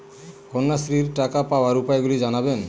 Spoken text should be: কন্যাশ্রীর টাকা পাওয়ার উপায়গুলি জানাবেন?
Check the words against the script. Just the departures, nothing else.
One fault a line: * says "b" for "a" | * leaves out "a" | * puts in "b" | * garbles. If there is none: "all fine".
all fine